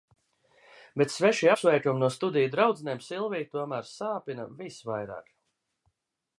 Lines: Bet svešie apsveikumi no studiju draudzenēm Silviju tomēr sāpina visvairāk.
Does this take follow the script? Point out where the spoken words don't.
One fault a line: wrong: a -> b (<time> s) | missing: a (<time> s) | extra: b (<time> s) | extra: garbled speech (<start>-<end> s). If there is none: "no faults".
no faults